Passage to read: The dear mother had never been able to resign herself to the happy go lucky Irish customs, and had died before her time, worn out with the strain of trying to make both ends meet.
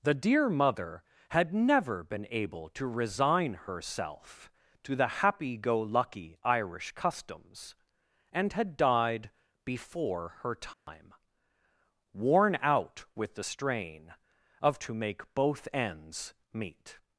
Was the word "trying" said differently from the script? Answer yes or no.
yes